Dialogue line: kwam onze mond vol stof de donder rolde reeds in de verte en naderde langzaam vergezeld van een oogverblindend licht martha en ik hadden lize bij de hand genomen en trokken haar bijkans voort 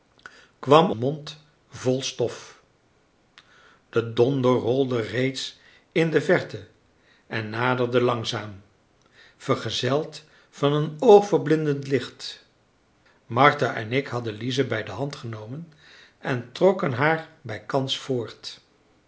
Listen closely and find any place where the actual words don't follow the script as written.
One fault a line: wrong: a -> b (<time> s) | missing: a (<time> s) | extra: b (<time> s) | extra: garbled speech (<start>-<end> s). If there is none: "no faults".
missing: onze (0.9 s)